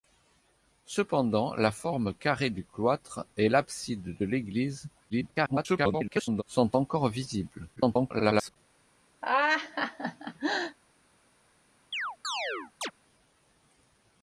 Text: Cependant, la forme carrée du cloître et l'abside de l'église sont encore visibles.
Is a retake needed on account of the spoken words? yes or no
yes